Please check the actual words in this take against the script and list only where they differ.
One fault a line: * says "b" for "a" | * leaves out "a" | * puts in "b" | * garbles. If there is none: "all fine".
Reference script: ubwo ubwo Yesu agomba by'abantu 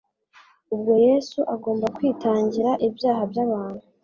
* leaves out "ubwo"
* puts in "kwitangira ibyaha"